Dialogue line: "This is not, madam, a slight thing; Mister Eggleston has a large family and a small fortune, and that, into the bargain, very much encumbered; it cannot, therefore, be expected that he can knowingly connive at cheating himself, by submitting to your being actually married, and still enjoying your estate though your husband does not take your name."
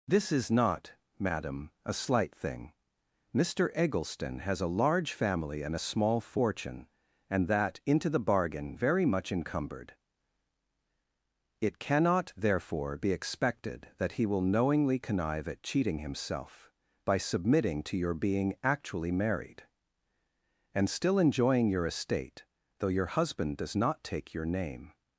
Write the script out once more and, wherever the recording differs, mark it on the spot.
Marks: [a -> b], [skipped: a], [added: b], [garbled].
"This is not, madam, a slight thing; Mister Eggleston has a large family and a small fortune, and that, into the bargain, very much encumbered; it cannot, therefore, be expected that he [can -> will] knowingly connive at cheating himself, by submitting to your being actually married, and still enjoying your estate though your husband does not take your name."